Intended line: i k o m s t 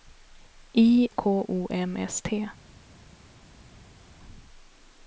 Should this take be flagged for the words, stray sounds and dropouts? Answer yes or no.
no